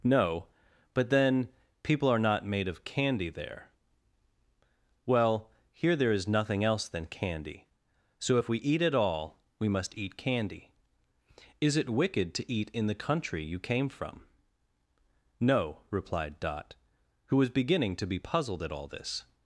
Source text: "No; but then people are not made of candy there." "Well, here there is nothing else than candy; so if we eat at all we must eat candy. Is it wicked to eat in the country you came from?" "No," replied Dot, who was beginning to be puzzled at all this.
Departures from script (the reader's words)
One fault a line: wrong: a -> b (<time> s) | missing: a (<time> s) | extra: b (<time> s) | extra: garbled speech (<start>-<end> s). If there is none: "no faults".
no faults